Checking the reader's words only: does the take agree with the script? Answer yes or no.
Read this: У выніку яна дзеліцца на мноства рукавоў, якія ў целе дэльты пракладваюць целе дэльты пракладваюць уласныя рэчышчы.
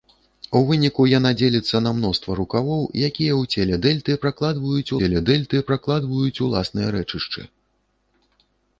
yes